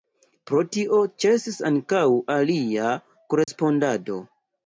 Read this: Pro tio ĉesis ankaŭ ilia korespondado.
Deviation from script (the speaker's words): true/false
false